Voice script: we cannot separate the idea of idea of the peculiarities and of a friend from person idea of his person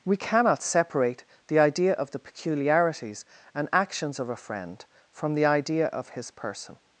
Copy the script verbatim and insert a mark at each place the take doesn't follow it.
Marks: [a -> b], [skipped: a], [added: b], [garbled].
we cannot separate the idea of [skipped: idea of] the peculiarities and [added: actions] of a friend from [person -> the] idea of his person